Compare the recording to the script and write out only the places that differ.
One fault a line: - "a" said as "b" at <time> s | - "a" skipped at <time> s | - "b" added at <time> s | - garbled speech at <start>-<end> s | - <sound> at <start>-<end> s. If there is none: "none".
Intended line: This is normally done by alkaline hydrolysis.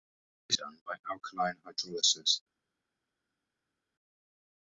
- "is normally" skipped at 0.6 s